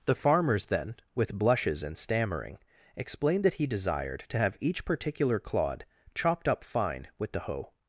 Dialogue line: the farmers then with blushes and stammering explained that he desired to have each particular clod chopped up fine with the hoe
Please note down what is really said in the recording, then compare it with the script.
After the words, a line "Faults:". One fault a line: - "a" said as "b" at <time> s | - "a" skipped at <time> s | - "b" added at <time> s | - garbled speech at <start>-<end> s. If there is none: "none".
the farmers then with blushes and stammering explained that he desired to have each particular clod chopped up fine with the hoe
Faults:
none